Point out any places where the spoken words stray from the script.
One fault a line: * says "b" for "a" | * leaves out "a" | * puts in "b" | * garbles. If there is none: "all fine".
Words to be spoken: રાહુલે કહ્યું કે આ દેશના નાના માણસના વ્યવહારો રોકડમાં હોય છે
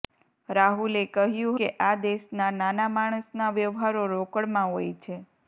all fine